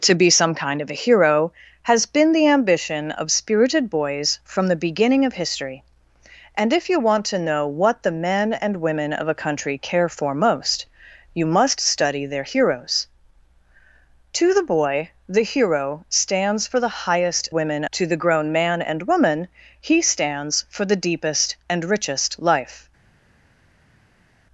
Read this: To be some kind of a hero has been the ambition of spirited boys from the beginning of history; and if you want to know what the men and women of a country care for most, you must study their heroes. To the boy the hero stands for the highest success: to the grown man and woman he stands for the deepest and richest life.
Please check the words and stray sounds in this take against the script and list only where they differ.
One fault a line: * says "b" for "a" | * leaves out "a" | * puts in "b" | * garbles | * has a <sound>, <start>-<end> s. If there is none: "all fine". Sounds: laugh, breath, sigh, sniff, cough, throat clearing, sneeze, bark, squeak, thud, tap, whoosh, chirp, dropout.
* says "women" for "success"